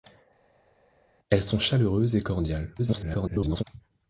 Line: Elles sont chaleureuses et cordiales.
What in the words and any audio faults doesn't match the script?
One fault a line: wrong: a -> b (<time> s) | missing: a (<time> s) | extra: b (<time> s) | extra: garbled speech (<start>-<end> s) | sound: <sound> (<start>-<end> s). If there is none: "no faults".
extra: garbled speech (2.8-3.6 s)